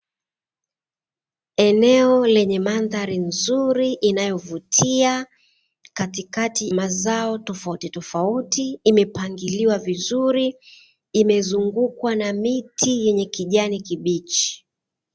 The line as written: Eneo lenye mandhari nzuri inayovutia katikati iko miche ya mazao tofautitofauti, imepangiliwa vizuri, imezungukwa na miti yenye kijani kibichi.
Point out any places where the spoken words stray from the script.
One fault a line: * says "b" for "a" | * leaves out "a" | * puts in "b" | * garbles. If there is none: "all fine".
* leaves out "iko miche ya"